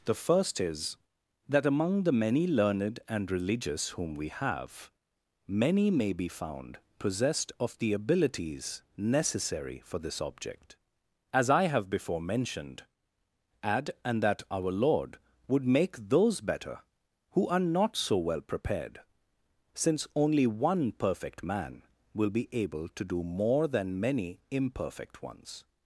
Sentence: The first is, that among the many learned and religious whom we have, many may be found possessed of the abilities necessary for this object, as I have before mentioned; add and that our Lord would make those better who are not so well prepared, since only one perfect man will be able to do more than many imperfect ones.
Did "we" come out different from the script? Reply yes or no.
no